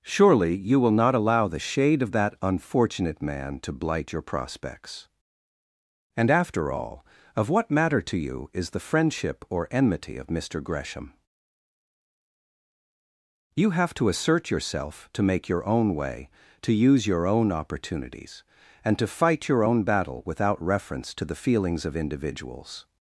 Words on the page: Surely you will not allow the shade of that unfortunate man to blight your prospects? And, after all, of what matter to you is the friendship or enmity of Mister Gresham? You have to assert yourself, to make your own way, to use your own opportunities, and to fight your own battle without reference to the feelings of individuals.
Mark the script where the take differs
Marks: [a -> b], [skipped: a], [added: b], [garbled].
Surely you will not allow the shade of that unfortunate man to blight your prospects? And, after all, of what matter to you is the friendship or enmity of Mister Gresham? You have to assert yourself, to make your own way, to use your own opportunities, and to fight your own battle without reference to the feelings of individuals.